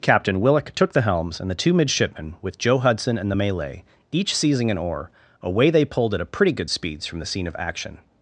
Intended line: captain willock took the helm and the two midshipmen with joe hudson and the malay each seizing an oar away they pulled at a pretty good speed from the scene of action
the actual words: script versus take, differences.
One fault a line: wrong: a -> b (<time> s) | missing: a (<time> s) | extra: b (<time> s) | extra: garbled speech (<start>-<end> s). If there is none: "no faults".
wrong: helm -> helms (1.0 s)
wrong: speed -> speeds (6.7 s)